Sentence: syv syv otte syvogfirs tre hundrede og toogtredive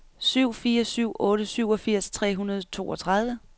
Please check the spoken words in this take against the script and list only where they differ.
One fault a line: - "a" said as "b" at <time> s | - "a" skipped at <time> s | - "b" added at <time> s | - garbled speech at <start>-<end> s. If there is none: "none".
- "fire" added at 0.5 s